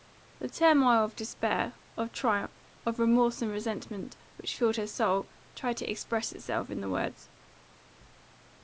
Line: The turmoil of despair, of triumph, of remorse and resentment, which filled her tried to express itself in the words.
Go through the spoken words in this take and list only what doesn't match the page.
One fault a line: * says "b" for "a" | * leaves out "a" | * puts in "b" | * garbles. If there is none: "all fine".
* puts in "soul"